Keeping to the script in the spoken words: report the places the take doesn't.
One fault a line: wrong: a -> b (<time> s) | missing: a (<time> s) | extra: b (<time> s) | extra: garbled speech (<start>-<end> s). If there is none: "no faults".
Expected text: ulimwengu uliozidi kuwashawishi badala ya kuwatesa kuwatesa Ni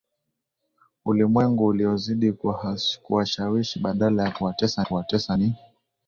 no faults